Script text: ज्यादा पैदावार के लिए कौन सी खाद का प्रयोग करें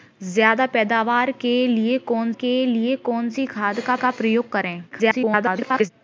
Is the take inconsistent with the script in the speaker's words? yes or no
yes